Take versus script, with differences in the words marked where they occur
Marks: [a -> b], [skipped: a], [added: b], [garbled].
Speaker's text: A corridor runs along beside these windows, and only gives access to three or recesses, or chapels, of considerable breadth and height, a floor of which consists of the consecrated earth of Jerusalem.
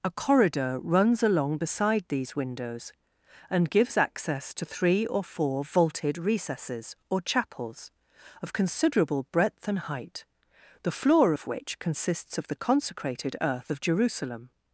A corridor runs along beside these windows, and [skipped: only] gives access to three or [added: four vaulted] recesses, or chapels, of considerable breadth and height, [a -> the] floor of which consists of the consecrated earth of Jerusalem.